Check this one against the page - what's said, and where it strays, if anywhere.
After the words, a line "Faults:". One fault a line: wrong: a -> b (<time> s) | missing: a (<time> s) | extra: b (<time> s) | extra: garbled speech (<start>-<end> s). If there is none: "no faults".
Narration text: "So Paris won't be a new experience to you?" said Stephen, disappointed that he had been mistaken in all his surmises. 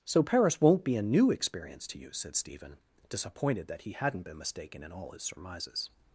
"So Paris won't be a new experience to you?" said Stephen, disappointed that he hadn't been mistaken in all his surmises.
Faults:
wrong: had -> hadn't (3.9 s)